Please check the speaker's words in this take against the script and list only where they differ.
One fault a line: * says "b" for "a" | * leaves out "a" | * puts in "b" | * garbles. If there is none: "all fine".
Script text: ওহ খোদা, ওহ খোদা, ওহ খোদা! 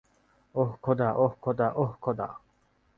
all fine